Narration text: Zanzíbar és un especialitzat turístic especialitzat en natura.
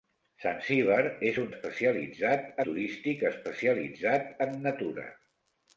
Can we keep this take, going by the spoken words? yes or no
yes